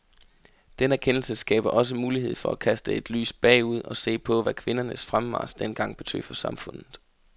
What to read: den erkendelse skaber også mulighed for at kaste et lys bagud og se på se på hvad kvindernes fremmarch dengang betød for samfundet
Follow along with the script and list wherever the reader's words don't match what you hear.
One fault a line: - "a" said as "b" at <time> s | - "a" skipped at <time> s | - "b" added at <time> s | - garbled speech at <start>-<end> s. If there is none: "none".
- "se på" skipped at 4.4 s